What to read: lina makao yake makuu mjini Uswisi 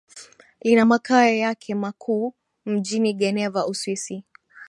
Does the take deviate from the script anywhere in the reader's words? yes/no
yes